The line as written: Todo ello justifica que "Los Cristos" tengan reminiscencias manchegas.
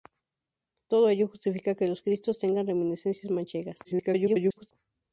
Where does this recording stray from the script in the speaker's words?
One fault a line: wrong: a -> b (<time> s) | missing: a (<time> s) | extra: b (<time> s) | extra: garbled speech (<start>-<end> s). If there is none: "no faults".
extra: garbled speech (3.8-4.7 s)